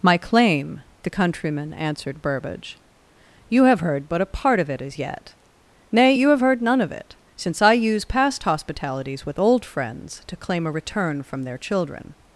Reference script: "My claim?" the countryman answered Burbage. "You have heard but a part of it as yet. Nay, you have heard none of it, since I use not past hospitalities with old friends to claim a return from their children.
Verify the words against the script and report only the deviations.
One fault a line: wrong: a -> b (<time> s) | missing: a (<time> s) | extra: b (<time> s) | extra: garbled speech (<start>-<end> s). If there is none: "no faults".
missing: not (8.0 s)